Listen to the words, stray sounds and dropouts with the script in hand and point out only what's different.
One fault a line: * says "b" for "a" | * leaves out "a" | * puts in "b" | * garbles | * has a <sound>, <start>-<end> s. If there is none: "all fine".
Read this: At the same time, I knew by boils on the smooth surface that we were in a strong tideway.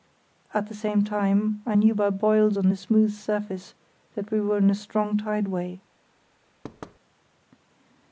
* has a thud, 6.6-7.0 s